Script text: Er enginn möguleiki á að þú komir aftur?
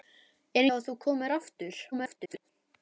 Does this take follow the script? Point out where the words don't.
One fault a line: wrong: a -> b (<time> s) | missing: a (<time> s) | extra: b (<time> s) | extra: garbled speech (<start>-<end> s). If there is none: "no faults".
missing: enginn möguleiki (0.6 s)
extra: garbled speech (1.9-2.5 s)